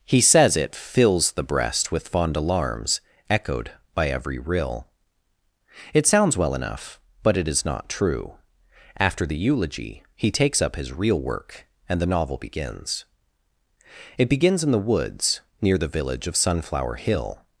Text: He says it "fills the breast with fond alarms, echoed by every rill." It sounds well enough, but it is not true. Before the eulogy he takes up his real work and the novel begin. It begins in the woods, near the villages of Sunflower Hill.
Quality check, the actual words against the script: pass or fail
fail